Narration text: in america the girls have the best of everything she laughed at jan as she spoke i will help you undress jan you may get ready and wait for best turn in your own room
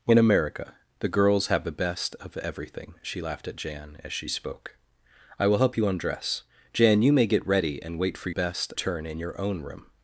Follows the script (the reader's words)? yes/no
yes